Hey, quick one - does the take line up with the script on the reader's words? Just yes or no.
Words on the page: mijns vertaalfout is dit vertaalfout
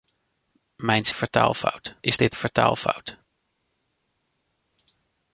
yes